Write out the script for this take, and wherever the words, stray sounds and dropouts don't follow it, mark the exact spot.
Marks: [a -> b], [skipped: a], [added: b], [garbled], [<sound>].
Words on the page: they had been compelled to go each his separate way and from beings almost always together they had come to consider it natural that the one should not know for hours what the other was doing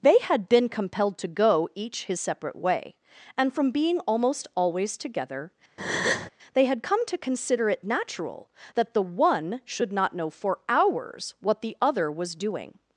they had been compelled to go each his separate way and from [beings -> being] almost always together [breath] they had come to consider it natural that the one should not know for hours what the other was doing